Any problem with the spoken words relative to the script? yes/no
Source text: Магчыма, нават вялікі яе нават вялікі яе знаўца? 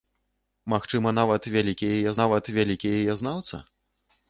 no